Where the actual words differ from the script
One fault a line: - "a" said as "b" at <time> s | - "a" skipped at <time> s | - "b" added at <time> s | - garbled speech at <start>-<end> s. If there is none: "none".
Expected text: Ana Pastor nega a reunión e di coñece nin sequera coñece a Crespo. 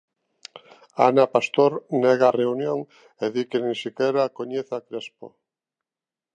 - "coñece" said as "que" at 3.5 s